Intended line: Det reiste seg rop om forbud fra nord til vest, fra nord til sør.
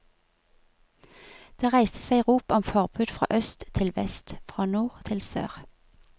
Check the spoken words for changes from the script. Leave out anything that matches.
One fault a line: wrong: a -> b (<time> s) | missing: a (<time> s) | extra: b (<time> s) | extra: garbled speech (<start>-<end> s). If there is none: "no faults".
wrong: nord -> øst (3.4 s)